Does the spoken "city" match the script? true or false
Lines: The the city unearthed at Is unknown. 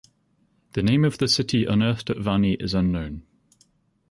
true